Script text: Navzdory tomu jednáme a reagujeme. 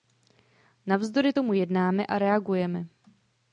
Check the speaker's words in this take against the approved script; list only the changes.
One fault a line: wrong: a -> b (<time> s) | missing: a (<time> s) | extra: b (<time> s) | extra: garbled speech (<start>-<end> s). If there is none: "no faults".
no faults